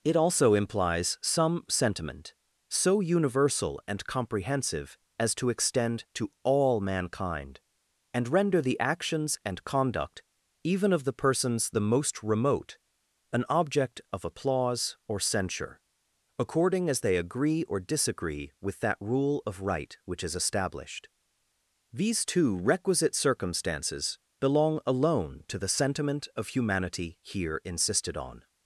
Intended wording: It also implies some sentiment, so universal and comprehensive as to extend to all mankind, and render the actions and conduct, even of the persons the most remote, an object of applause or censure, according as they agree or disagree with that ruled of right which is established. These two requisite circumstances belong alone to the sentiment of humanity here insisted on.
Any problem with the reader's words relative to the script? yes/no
yes